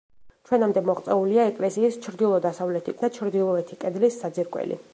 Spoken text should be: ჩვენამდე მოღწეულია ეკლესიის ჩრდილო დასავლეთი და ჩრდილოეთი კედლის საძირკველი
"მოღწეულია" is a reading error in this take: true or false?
false